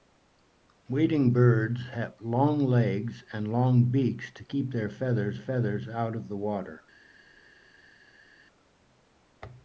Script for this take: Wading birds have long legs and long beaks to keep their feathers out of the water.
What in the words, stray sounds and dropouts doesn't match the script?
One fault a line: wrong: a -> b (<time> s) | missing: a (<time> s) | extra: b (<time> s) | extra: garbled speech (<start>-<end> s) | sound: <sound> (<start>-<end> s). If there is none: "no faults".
extra: feathers (5.4 s)